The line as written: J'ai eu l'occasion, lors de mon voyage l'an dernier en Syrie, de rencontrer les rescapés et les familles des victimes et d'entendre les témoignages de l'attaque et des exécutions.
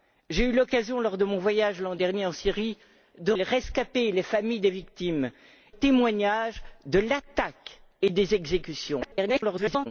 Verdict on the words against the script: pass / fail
fail